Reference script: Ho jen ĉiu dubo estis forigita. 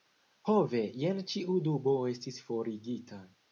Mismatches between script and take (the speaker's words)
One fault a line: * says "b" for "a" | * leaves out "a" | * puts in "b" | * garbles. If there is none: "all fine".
* puts in "ve"